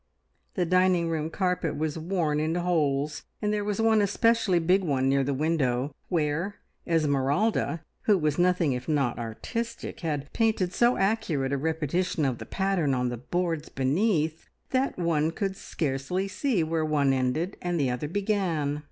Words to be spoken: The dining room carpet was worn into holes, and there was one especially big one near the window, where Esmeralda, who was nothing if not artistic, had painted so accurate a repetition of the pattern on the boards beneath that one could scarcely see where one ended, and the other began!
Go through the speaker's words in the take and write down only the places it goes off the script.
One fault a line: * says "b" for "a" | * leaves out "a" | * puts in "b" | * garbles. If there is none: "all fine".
all fine